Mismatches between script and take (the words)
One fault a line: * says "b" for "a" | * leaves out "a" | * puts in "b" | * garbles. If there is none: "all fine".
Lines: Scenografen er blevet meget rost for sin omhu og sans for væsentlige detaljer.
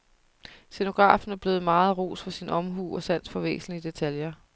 all fine